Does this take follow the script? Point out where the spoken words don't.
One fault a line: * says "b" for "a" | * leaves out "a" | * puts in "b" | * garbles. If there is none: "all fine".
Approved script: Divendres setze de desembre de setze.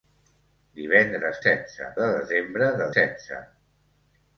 all fine